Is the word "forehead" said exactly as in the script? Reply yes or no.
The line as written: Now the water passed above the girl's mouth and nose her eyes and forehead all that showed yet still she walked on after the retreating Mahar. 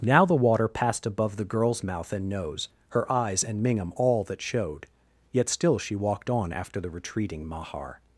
no